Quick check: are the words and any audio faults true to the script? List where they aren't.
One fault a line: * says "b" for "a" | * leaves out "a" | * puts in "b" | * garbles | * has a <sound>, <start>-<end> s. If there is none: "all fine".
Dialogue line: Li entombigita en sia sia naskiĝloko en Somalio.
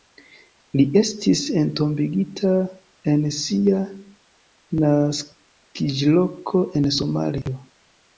* puts in "estis"
* leaves out "sia"
* has a dropout, 7.4-7.5 s